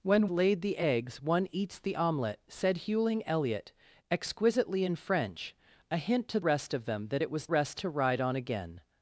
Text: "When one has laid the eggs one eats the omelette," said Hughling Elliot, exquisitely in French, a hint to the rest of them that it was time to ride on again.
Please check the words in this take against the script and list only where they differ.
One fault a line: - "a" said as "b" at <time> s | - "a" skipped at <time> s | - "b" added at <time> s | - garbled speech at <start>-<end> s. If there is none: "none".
- "one has" skipped at 0.3 s
- "the" skipped at 6.4 s
- "time" said as "rest" at 7.5 s